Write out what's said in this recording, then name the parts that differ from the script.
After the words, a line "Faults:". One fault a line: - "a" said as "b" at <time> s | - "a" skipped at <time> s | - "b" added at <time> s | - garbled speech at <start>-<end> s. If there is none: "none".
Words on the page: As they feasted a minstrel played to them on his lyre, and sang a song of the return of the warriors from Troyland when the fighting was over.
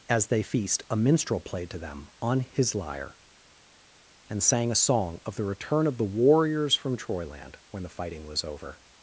As they feast a minstrel played to them on his lyre, and sang a song of the return of the warriors from Troyland when the fighting was over.
Faults:
- "feasted" said as "feast" at 0.4 s